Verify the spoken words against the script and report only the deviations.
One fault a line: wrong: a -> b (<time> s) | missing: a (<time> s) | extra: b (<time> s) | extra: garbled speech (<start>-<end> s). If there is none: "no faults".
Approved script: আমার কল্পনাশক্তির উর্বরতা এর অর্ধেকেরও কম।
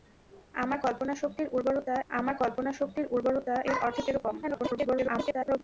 extra: আমার কল্পনাশক্তির উর্বরতা (2.1 s)
extra: garbled speech (4.4-5.6 s)